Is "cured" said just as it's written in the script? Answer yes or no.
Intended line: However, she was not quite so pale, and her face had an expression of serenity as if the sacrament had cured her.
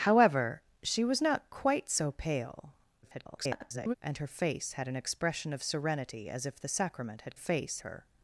no